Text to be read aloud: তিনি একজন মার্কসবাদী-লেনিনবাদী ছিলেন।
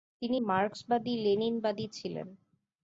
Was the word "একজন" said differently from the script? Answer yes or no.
yes